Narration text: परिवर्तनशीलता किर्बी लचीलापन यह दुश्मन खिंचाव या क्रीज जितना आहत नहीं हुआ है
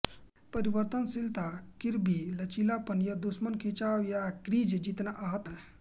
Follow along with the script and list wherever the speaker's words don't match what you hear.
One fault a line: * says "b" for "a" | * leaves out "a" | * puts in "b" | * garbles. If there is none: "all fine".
* leaves out "नहीं हुआ"